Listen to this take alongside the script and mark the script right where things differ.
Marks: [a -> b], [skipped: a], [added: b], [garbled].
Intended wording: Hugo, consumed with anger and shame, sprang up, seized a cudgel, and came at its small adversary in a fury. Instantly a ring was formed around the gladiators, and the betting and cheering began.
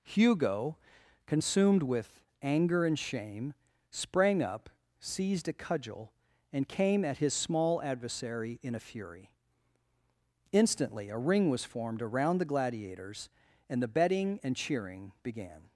Hugo, consumed with anger and shame, sprang up, seized a cudgel, and came at [its -> his] small adversary in a fury. Instantly a ring was formed around the gladiators, and the betting and cheering began.